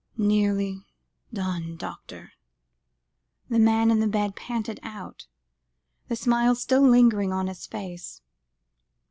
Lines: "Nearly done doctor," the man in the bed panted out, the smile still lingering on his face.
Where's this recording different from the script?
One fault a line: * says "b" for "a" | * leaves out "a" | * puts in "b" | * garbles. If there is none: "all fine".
all fine